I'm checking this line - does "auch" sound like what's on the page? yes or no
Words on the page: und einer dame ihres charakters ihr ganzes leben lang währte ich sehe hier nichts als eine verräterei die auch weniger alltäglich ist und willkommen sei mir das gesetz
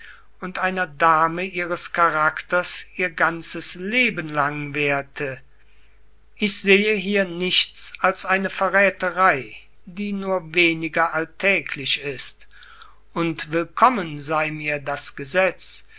no